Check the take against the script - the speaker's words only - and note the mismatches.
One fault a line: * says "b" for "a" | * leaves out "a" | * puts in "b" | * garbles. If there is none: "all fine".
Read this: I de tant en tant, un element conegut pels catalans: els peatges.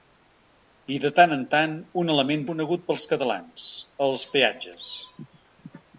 all fine